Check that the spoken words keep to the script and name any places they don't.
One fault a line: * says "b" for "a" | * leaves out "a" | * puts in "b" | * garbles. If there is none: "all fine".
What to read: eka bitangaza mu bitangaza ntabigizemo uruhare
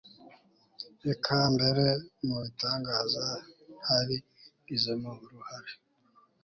* says "mbere" for "bitangaza"